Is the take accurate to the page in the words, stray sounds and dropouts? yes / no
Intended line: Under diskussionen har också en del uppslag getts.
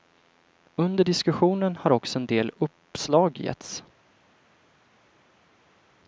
yes